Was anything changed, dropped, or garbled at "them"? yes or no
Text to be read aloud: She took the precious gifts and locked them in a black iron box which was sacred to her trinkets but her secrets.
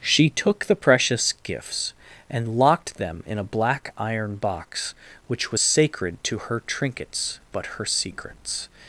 no